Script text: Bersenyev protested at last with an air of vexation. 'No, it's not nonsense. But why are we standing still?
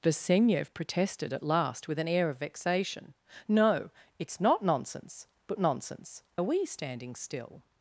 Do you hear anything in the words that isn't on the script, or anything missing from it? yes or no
yes